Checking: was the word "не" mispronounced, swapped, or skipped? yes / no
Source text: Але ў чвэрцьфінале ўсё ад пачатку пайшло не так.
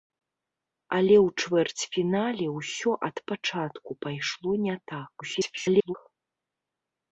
no